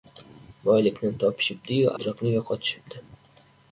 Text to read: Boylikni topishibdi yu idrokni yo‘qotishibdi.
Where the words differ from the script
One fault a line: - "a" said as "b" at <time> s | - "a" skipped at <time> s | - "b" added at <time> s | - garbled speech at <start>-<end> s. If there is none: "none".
none